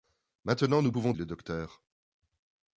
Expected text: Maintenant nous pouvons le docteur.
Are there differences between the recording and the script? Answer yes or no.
no